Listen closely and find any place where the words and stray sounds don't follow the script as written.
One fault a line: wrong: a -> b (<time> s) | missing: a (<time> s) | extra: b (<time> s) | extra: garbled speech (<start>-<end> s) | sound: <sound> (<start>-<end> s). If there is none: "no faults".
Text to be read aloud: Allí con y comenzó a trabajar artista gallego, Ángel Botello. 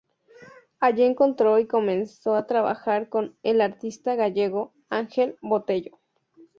wrong: con -> encontró (1.0 s)
extra: con el (3.1 s)